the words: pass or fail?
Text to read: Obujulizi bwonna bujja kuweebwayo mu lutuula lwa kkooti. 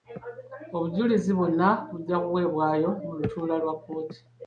pass